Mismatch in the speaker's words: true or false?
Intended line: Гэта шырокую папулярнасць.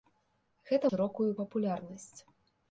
false